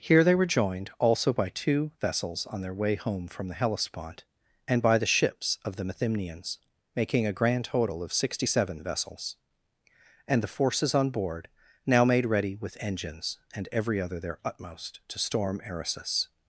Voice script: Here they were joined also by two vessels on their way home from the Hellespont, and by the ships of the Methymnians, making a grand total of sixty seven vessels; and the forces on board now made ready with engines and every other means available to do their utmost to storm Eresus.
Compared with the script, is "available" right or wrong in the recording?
wrong